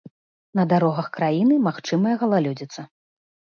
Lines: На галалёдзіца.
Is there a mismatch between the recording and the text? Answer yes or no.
yes